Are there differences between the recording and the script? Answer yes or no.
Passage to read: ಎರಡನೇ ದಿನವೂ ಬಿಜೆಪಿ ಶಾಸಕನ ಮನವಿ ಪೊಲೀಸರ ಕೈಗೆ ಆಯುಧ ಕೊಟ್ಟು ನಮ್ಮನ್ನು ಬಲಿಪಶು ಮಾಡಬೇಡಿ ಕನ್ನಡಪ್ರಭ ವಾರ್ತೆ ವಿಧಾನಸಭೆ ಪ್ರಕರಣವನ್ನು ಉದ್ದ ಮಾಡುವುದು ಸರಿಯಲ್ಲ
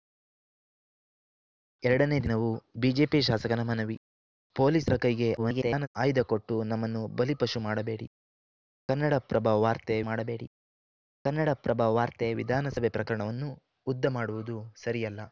yes